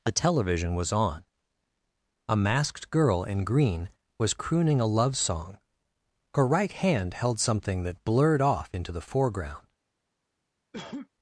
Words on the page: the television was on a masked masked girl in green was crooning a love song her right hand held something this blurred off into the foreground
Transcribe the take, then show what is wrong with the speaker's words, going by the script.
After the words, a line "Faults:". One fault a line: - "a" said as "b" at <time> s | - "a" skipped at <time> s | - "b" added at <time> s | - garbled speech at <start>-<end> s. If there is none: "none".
the television was on a masked girl in green was crooning a love song her right hand held something that blurred off into the foreground
Faults:
- "masked" skipped at 2.9 s
- "this" said as "that" at 7.8 s